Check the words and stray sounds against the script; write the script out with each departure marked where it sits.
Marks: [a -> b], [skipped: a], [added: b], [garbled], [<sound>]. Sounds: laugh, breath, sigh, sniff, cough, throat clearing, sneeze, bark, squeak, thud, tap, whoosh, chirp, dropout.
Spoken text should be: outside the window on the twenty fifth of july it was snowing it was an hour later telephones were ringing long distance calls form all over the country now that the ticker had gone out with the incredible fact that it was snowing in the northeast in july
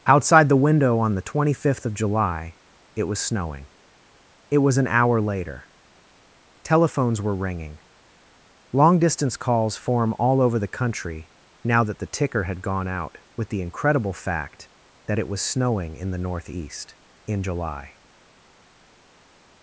outside the window on the twenty fifth of july it was snowing it was an hour later telephones were ringing long distance calls form all over the country now that the ticker had gone out with the incredible fact that it was snowing in the northeast in july